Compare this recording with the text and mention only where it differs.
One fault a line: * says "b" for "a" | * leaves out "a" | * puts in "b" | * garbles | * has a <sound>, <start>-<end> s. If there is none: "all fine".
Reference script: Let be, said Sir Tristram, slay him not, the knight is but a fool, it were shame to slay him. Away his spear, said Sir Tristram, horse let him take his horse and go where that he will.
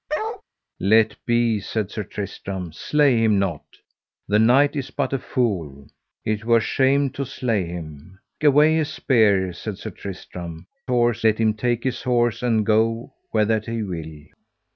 * has a bark, 0.1-0.4 s